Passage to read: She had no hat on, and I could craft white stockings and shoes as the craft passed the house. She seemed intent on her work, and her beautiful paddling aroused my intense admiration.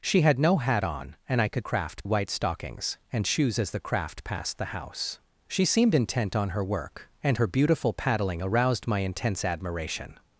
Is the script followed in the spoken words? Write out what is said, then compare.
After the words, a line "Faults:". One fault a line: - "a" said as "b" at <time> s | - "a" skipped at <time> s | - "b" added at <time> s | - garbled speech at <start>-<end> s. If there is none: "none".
She had no hat on, and I could craft white stockings and shoes as the craft passed the house. She seemed intent on her work, and her beautiful paddling aroused my intense admiration.
Faults:
none